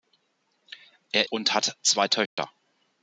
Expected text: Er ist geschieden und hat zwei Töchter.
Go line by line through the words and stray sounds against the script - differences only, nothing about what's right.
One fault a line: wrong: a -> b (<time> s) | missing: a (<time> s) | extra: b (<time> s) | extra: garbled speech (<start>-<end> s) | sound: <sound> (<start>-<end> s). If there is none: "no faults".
missing: ist geschieden (1.3 s)
sound: dropout (2.3-2.4 s)